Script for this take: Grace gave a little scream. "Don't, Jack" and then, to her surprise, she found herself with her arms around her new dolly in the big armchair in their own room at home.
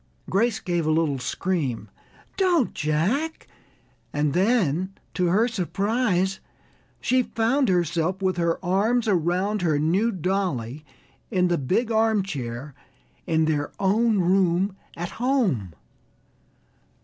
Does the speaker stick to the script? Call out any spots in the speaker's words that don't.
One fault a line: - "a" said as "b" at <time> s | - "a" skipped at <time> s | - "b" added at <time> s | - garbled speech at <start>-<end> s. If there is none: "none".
none